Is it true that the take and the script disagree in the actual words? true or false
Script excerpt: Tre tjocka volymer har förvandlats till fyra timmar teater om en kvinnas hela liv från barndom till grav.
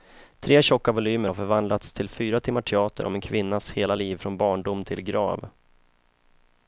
false